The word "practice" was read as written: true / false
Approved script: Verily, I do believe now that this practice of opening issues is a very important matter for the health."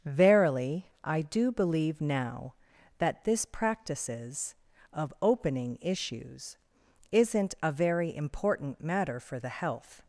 false